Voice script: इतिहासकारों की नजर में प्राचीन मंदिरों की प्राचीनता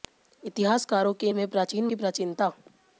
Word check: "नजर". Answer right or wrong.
wrong